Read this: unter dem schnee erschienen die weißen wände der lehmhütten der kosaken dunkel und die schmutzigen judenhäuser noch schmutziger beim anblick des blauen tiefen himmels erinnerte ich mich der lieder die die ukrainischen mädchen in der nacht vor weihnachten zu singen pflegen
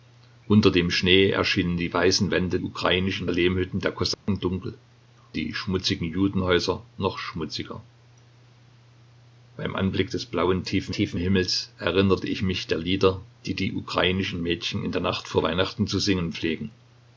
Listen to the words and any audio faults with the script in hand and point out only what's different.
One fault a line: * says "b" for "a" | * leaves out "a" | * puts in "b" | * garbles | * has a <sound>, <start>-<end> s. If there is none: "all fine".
* says "ukrainischen" for "der"
* has a dropout, 4.1-4.3 s
* leaves out "und"
* puts in "tiefen"